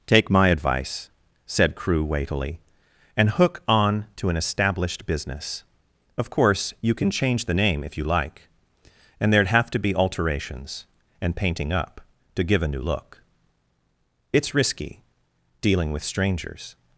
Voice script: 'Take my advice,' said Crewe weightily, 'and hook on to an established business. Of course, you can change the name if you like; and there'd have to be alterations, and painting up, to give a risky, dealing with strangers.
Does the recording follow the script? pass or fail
fail